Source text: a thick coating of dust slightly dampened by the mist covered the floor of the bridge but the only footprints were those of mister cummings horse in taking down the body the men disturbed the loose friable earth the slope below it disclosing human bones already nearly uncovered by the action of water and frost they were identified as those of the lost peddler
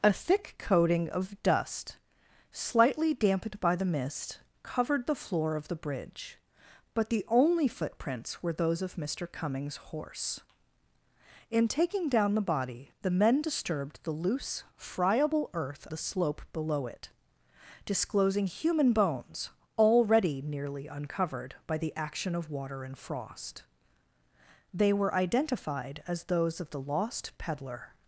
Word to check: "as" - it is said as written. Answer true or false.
true